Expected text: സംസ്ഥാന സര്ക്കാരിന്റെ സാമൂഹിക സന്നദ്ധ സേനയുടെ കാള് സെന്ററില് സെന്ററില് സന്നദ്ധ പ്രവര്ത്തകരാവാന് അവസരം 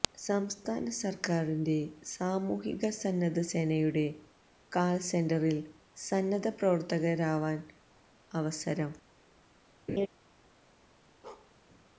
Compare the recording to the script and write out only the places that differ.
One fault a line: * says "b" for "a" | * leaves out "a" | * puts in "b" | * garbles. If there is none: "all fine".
* leaves out "സെന്ററില്"